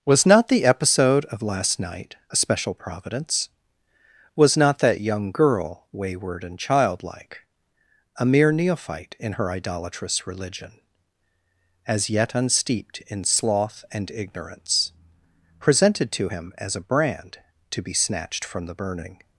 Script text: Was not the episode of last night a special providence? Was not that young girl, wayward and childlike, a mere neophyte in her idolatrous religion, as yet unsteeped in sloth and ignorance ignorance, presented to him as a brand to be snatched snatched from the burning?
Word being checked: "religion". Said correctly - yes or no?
yes